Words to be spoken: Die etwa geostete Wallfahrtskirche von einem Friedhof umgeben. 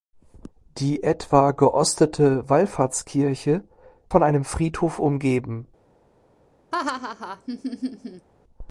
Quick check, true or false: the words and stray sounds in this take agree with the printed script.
false